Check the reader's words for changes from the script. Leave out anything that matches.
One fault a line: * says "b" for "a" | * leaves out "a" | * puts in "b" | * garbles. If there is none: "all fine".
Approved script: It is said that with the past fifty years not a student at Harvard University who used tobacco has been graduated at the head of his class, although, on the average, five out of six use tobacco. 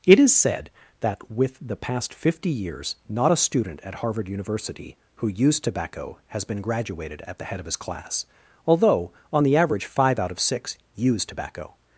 all fine